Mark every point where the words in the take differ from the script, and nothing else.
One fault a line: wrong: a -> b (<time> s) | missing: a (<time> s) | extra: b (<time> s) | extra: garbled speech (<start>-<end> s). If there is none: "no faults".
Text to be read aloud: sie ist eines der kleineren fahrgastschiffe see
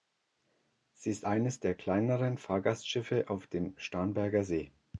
extra: auf dem starnberger (3.3 s)